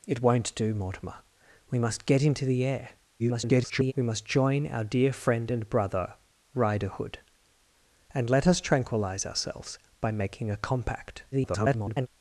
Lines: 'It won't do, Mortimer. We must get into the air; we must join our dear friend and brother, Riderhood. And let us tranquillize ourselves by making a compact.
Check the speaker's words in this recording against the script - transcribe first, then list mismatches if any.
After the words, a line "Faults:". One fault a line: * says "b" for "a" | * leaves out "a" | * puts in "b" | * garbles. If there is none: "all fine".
'It won't do, Mortimer. We must get into the air; [garbled] we must join our dear friend and brother, Riderhood. And let us tranquillize ourselves by making a compact. [garbled]
Faults:
* garbles
* garbles